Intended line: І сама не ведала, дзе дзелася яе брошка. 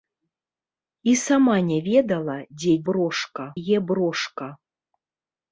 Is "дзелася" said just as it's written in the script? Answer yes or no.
no